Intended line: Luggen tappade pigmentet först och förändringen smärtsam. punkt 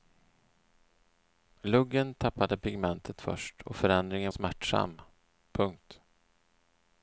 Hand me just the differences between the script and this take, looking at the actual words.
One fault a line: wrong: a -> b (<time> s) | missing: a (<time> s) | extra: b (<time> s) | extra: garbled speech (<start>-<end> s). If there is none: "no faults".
no faults